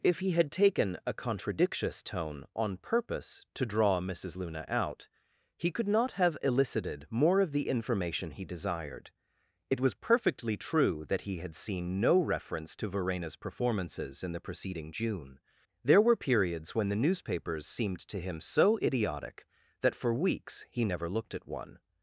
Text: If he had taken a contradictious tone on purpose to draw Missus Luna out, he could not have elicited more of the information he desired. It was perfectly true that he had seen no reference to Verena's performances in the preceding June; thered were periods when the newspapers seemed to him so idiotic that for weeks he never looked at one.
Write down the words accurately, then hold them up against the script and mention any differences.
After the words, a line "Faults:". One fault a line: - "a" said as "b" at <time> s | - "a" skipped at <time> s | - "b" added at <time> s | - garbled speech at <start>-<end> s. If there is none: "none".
If he had taken a contradictious tone on purpose to draw Missus Luna out, he could not have elicited more of the information he desired. It was perfectly true that he had seen no reference to Verena's performances in the preceding June; there were periods when the newspapers seemed to him so idiotic that for weeks he never looked at one.
Faults:
- "thered" said as "there" at 15.8 s